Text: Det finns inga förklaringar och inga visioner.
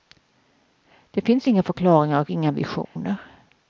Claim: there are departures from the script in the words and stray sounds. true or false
true